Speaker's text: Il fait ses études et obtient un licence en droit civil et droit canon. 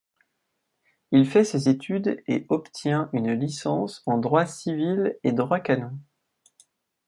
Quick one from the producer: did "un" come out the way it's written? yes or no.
no